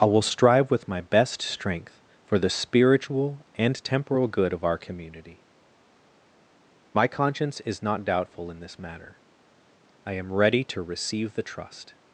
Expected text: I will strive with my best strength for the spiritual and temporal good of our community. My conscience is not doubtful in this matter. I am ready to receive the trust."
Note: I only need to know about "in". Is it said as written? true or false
true